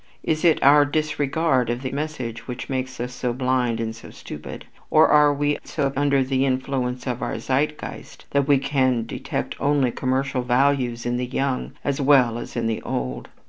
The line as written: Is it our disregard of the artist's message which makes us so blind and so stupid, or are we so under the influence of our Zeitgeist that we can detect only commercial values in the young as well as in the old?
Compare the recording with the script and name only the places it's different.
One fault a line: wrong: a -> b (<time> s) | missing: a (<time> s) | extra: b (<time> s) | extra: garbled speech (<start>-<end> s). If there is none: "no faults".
missing: artist's (1.9 s)